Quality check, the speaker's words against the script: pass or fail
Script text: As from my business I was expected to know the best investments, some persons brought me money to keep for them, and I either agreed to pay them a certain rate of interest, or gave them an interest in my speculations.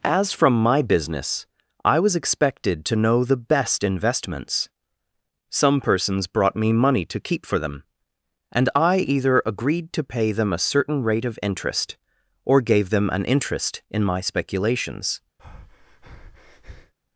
pass